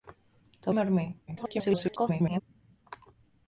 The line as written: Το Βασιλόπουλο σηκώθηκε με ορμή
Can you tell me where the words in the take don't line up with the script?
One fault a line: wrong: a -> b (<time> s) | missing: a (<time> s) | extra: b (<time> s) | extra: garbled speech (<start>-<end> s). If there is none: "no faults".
missing: Βασιλόπουλο σηκώθηκε (0.7 s)
extra: garbled speech (1.3-2.4 s)